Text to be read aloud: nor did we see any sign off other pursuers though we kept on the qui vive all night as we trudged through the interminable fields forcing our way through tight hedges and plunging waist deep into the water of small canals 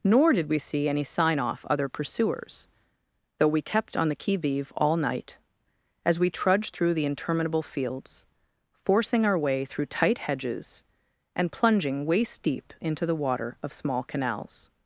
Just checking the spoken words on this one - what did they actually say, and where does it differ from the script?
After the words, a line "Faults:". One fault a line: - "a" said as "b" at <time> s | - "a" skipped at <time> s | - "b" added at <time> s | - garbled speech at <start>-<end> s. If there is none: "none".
nor did we see any sign off other pursuers though we kept on the qui vive all night as we trudged through the interminable fields forcing our way through tight hedges and plunging waist deep into the water of small canals
Faults:
none